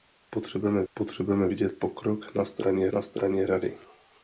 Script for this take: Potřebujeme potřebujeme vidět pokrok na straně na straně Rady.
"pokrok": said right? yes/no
yes